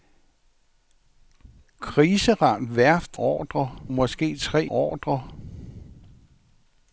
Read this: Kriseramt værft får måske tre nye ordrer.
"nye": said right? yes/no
no